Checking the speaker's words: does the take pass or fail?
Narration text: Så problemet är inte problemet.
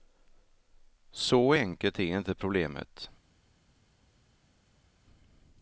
fail